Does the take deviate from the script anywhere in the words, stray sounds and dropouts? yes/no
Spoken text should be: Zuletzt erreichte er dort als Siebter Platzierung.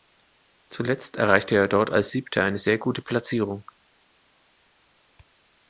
yes